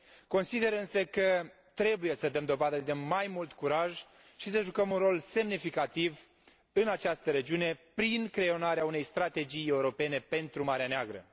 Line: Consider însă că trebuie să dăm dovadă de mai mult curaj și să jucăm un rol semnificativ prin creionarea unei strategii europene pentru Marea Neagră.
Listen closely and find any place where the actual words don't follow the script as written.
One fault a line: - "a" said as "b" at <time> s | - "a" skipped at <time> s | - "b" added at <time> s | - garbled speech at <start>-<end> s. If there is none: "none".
- "în această regiune" added at 6.7 s